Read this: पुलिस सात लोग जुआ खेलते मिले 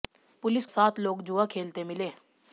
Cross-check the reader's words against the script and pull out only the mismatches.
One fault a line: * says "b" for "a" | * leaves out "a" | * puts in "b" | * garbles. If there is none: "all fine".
all fine